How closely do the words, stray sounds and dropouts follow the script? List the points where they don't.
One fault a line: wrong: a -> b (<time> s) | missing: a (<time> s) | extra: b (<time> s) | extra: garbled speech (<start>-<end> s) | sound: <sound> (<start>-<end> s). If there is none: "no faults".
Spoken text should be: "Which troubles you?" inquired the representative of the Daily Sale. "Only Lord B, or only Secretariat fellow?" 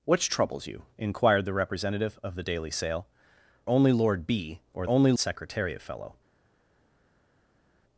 no faults